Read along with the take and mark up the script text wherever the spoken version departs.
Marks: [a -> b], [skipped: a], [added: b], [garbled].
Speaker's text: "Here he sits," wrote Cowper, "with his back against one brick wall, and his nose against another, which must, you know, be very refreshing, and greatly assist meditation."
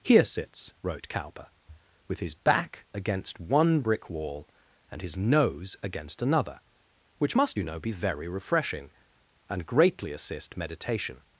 "Here [skipped: he] sits," wrote Cowper, "with his back against one brick wall, and his nose against another, which must, you know, be very refreshing, and greatly assist meditation."